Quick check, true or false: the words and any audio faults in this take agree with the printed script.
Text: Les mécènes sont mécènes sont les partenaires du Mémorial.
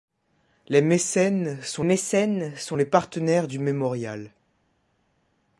true